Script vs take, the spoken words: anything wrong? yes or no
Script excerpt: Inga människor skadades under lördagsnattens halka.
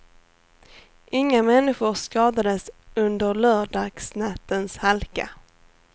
no